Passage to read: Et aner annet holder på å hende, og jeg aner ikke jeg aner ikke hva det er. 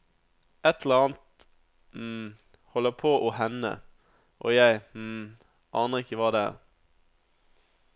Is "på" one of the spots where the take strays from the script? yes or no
no